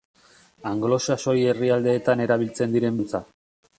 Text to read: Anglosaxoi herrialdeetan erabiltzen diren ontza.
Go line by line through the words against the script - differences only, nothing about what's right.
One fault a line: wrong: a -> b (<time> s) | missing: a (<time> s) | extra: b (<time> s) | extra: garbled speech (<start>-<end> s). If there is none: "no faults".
no faults